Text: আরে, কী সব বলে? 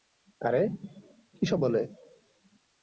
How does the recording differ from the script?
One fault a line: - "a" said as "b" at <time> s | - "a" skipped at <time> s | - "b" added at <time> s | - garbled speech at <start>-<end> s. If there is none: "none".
none